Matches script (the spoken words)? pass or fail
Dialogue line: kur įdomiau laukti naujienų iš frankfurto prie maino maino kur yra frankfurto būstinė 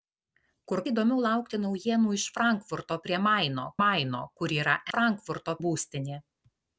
pass